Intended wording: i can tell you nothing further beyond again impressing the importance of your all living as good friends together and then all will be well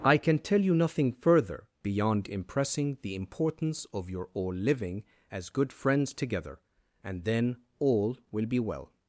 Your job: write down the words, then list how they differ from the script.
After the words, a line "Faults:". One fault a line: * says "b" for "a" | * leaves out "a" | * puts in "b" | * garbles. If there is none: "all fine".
i can tell you nothing further beyond impressing the importance of your all living as good friends together and then all will be well
Faults:
* leaves out "again"